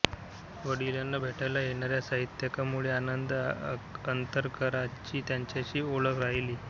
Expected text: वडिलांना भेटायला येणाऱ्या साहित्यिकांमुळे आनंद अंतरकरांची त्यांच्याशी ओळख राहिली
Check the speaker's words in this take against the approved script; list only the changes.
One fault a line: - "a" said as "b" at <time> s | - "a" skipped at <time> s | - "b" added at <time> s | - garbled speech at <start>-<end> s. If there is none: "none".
none